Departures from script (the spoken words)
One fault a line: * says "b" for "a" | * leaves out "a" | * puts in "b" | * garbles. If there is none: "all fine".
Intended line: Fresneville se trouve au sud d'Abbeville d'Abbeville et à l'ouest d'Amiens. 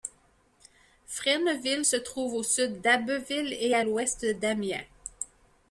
* leaves out "d'Abbeville"